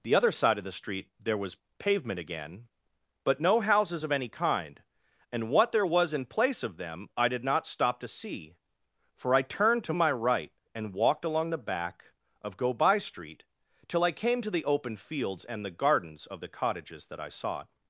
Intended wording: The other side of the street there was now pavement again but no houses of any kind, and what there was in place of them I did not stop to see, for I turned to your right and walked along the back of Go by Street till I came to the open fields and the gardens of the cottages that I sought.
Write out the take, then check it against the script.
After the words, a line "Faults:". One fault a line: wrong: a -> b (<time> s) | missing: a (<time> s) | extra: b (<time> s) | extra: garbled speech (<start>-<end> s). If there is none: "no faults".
The other side of the street there was pavement again but no houses of any kind, and what there was in place of them I did not stop to see, for I turned to my right and walked along the back of Go by Street till I came to the open fields and the gardens of the cottages that I sought.
Faults:
missing: now (1.6 s)
wrong: your -> my (9.9 s)